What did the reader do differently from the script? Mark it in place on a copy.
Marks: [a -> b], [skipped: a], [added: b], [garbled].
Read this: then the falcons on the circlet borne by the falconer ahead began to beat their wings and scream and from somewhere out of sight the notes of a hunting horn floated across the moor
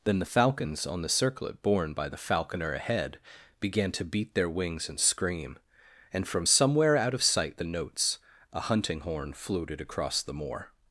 then the falcons on the circlet borne by the falconer ahead began to beat their wings and scream and from somewhere out of sight the notes [skipped: of] a hunting horn floated across the moor